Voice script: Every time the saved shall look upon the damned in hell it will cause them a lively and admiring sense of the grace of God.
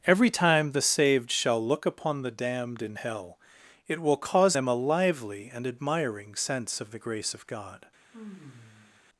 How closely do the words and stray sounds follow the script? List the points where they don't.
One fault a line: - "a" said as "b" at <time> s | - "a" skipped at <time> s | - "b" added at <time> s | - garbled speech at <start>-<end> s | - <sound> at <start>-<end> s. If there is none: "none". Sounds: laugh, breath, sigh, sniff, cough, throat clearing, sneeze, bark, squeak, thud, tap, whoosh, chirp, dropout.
- sigh at 8.1-9.0 s